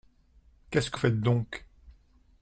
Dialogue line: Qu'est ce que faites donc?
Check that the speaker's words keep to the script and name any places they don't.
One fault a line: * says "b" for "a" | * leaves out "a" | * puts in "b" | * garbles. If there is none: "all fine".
all fine